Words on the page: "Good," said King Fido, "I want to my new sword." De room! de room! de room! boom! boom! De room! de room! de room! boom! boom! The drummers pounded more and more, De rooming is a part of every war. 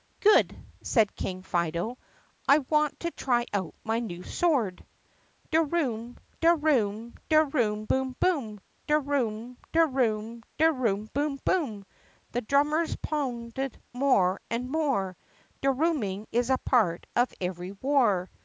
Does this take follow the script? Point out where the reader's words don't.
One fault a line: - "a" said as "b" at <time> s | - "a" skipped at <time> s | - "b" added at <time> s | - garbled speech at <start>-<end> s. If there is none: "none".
- "try out" added at 3.1 s